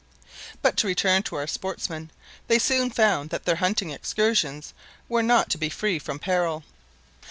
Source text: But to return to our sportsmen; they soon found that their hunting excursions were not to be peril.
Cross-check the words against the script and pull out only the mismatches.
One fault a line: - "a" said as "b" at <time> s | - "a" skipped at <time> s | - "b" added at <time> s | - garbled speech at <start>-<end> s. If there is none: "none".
- "free from" added at 5.7 s